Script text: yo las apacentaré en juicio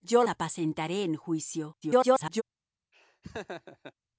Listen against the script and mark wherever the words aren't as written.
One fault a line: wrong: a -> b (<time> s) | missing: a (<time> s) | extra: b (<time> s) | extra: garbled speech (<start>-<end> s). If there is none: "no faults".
missing: las (0.2 s)
extra: garbled speech (1.8-2.4 s)